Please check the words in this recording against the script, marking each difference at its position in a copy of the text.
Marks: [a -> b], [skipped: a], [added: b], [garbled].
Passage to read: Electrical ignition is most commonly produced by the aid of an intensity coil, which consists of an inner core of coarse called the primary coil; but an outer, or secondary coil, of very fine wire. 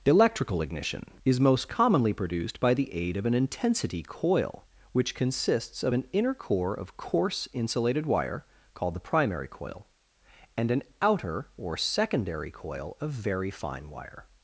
Electrical ignition is most commonly produced by the aid of an intensity coil, which consists of an inner core of coarse [added: insulated wire] called the primary coil; [but -> and] an outer, or secondary coil, of very fine wire.